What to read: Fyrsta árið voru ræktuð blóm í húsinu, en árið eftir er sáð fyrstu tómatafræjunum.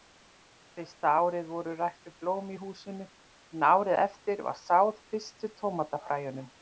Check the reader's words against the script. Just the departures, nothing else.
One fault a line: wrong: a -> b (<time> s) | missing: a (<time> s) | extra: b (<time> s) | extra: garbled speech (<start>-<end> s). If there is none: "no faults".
wrong: er -> var (4.5 s)